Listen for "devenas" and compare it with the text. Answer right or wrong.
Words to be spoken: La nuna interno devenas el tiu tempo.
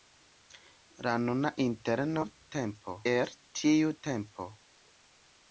wrong